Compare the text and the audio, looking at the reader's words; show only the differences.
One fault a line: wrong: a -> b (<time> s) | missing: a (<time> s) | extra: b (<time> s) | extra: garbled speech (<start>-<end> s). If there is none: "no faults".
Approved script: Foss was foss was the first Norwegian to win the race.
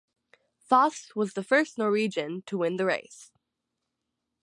missing: foss was (1.3 s)